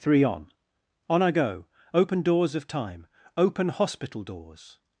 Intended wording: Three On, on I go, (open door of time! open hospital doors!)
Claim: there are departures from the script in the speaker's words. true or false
true